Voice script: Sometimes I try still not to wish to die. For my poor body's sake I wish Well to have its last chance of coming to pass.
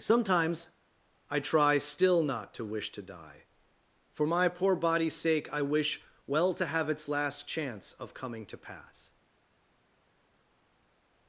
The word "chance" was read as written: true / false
true